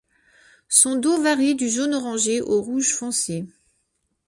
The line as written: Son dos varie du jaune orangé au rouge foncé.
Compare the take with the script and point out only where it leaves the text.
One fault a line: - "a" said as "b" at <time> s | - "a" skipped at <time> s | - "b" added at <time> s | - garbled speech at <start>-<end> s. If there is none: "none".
none